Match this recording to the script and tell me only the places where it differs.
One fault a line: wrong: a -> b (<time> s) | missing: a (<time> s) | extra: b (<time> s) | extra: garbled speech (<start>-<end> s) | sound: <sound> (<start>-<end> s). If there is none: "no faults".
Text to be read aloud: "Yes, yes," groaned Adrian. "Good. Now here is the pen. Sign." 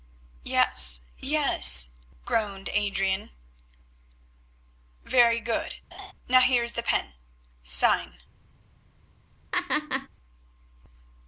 extra: Very (5.0 s)
sound: laugh (5.9-6.1 s)
sound: laugh (9.5-10.1 s)